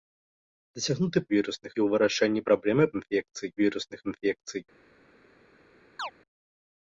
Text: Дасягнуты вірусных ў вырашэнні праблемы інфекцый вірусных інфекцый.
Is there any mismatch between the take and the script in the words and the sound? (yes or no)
yes